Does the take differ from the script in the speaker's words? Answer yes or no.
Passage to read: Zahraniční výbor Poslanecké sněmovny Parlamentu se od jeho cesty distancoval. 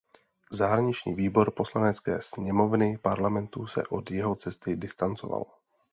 no